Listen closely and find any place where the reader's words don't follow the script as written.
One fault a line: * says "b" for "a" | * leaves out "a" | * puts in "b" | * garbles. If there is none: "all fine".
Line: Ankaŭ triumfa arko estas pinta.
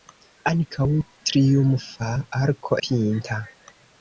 * leaves out "estas"